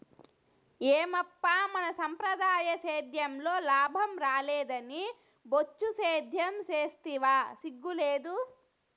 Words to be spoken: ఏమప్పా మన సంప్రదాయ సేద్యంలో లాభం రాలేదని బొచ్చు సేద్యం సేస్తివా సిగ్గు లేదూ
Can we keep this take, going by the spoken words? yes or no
yes